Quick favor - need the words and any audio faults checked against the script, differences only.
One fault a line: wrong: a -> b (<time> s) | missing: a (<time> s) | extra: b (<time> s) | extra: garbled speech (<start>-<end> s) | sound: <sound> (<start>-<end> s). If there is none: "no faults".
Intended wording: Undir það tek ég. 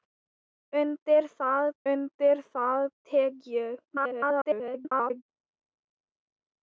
extra: undir það (1.9 s)
extra: garbled speech (3.9-5.2 s)